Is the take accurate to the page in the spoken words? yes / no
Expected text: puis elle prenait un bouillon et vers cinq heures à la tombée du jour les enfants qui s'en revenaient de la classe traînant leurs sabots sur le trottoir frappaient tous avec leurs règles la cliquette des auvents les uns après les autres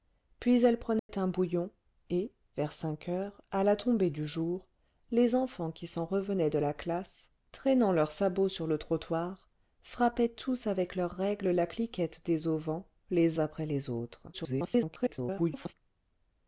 no